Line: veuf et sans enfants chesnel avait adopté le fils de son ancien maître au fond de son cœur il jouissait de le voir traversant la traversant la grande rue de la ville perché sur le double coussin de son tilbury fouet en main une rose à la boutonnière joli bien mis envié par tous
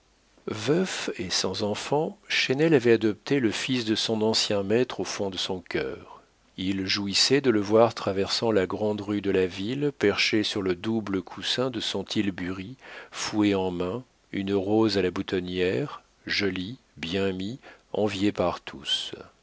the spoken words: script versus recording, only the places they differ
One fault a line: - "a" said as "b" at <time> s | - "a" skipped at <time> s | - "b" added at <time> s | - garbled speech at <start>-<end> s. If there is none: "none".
- "traversant la" skipped at 8.7 s